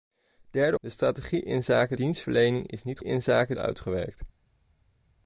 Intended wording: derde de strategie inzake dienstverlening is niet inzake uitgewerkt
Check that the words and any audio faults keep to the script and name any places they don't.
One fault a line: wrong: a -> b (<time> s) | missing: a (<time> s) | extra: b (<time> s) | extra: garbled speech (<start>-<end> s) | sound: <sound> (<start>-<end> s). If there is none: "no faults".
no faults